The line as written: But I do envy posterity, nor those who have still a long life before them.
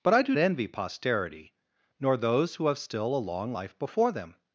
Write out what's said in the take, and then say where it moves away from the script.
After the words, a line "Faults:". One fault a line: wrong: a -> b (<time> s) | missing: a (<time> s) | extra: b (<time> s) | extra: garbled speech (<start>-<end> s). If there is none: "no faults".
But I do envy posterity, nor those who have still a long life before them.
Faults:
no faults